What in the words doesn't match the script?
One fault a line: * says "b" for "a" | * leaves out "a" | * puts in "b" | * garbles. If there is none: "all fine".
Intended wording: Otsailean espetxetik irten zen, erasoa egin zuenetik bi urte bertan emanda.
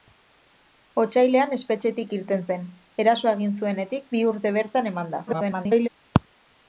* garbles